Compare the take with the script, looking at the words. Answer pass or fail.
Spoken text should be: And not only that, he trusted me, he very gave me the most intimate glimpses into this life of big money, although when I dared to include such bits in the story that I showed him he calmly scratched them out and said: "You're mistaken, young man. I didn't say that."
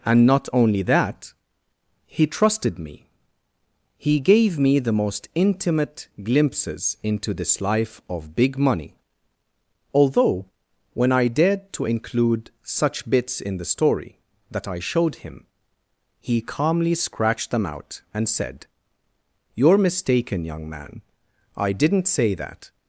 fail